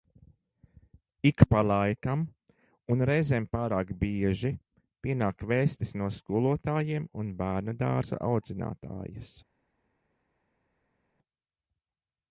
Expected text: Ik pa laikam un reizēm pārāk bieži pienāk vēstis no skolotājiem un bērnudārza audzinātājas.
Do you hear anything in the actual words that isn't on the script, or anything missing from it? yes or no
no